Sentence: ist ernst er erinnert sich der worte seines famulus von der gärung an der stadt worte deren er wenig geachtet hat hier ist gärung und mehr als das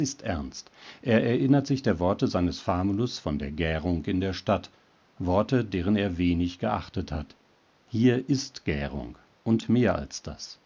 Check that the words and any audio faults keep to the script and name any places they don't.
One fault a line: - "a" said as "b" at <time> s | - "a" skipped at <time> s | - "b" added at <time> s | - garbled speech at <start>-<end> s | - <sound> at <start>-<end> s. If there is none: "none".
- "an" said as "in" at 4.0 s